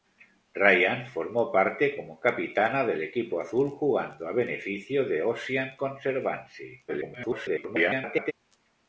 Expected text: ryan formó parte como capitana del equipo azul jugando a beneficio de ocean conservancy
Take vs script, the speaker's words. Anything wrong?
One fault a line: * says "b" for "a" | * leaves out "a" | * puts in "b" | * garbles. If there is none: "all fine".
* garbles